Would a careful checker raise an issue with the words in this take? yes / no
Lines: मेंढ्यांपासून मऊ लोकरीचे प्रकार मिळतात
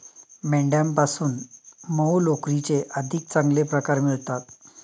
yes